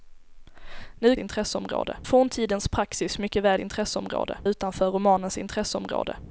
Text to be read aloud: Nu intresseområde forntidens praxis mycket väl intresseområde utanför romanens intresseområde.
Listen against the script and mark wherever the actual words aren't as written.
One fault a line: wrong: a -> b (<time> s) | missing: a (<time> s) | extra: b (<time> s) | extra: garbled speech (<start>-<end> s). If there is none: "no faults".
no faults